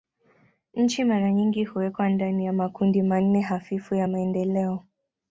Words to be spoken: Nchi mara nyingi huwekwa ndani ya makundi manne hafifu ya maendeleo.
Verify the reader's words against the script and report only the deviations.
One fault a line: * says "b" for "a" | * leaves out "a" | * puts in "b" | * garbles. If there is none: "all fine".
all fine